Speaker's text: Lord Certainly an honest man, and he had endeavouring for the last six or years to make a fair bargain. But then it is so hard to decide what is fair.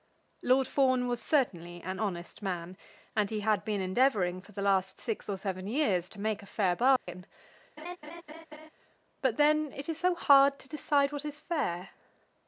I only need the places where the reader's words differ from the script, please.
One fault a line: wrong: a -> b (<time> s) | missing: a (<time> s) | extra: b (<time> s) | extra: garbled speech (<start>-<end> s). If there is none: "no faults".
extra: Fawn was (0.7 s)
extra: been (3.6 s)
extra: seven (5.4 s)